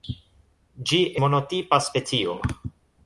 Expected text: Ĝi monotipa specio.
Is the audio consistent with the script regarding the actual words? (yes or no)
yes